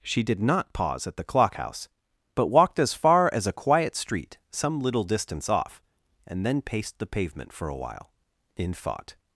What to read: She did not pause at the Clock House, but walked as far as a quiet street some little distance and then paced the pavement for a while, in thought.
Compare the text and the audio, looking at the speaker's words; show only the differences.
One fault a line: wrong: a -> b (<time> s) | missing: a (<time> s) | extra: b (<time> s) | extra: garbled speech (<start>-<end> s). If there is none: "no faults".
extra: off (5.5 s)